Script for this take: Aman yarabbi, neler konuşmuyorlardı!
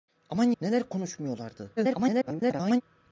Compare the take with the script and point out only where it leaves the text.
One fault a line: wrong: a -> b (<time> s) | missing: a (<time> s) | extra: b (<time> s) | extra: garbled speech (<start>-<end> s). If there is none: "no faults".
missing: yarabbi (0.5 s)
extra: garbled speech (1.8-2.8 s)